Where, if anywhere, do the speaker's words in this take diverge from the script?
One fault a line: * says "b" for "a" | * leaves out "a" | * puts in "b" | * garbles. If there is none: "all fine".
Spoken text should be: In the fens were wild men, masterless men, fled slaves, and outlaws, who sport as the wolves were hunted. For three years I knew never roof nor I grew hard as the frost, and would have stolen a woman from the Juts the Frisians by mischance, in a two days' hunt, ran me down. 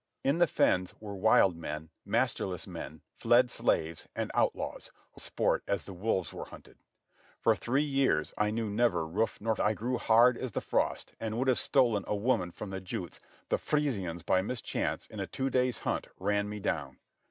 all fine